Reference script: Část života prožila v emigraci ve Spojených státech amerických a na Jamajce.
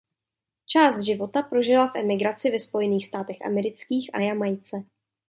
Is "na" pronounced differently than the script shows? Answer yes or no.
yes